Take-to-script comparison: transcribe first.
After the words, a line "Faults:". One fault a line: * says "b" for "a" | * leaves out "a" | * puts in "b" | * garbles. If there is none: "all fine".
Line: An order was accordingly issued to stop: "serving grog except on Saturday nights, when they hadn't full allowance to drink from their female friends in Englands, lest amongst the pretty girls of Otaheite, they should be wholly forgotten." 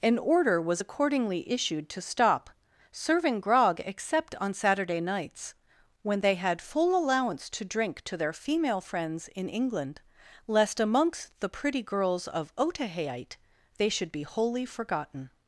An order was accordingly issued to stop: "serving grog except on Saturday nights, when they had full allowance to drink to their female friends in England, lest amongst the pretty girls of Otaheite, they should be wholly forgotten."
Faults:
* says "had" for "hadn't"
* says "to" for "from"
* says "England" for "Englands"